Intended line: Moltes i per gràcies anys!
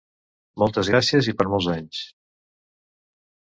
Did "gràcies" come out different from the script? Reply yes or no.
yes